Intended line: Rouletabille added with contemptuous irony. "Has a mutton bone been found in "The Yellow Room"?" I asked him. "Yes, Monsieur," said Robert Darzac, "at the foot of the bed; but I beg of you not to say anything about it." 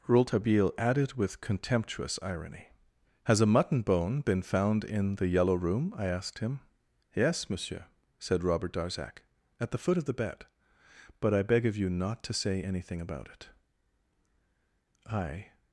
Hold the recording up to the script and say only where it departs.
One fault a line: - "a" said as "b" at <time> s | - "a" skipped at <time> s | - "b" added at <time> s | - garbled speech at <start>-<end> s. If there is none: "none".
- "I" added at 15.0 s